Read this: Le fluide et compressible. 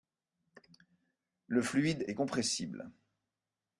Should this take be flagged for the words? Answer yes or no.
no